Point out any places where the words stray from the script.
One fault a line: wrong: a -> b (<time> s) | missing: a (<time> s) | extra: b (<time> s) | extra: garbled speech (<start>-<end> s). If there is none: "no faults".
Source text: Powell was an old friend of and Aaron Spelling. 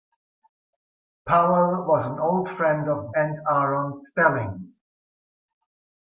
no faults